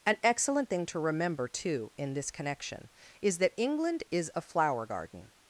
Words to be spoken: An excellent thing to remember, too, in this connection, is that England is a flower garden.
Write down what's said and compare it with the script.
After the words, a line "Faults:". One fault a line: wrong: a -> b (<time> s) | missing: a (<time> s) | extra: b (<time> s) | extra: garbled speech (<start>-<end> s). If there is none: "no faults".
An excellent thing to remember, too, in this connection, is that England is a flower garden.
Faults:
no faults